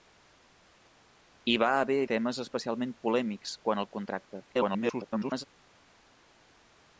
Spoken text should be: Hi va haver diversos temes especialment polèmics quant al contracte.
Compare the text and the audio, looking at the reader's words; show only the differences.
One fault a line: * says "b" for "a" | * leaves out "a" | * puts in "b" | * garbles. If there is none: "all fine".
* leaves out "diversos"
* garbles